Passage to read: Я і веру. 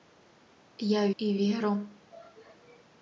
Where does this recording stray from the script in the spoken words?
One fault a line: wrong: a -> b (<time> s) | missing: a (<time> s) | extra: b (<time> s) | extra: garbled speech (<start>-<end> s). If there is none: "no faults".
no faults